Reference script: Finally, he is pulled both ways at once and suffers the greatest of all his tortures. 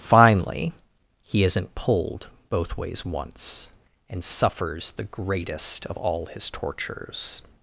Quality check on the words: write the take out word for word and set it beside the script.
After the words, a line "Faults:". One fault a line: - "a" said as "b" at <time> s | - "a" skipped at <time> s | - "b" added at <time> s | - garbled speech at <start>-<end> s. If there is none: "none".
Finally, he isn't pulled both ways once and suffers the greatest of all his tortures.
Faults:
- "is" said as "isn't" at 1.4 s
- "at" skipped at 3.0 s